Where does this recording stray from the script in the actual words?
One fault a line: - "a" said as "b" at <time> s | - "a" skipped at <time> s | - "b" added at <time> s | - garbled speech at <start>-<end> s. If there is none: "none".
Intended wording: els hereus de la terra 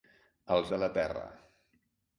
- "hereus" skipped at 0.7 s